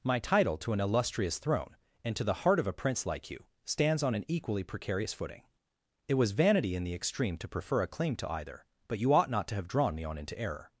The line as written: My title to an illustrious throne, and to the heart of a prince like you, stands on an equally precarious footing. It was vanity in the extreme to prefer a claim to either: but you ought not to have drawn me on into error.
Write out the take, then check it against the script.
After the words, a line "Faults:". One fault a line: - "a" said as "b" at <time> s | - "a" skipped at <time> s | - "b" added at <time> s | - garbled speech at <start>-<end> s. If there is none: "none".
My title to an illustrious throne, and to the heart of a prince like you, stands on an equally precarious footing. It was vanity in the extreme to prefer a claim to either: but you ought not to have drawn me on into error.
Faults:
none